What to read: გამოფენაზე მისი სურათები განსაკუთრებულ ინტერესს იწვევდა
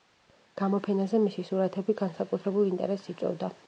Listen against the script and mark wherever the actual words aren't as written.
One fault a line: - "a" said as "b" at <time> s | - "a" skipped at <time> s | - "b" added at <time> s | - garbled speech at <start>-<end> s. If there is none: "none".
none